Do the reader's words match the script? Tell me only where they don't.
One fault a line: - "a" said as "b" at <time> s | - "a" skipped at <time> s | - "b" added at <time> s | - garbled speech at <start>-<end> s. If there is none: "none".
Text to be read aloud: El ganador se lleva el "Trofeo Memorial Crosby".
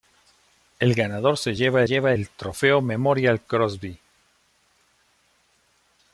- "lleva" added at 1.8 s